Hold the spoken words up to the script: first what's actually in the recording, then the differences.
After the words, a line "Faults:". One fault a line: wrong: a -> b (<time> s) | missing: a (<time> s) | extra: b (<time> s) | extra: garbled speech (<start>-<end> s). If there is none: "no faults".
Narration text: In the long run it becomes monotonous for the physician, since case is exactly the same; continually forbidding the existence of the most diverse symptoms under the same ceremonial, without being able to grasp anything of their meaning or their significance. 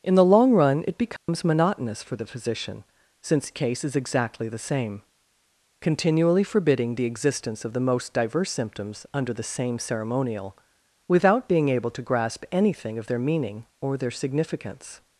In the long run it becomes monotonous for the physician, since case is exactly the same; continually forbidding the existence of the most diverse symptoms under the same ceremonial, without being able to grasp anything of their meaning or their significance.
Faults:
no faults